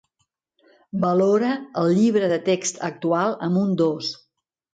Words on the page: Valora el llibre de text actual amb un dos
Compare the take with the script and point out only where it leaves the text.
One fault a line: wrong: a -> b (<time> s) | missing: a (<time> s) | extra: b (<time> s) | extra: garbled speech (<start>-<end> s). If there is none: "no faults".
no faults